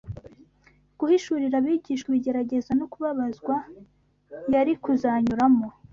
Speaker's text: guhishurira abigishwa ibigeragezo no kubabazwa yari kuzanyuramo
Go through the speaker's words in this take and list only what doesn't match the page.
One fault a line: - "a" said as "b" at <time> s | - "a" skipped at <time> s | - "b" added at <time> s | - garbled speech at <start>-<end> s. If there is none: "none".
none